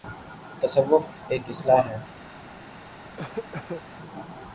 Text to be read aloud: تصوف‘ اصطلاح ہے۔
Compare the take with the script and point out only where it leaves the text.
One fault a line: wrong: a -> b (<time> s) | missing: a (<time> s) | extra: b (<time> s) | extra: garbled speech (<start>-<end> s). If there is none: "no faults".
extra: ایک (1.3 s)